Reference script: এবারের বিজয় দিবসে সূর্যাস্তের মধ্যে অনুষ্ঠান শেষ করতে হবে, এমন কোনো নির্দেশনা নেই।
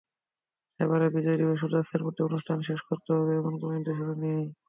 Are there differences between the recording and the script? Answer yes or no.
no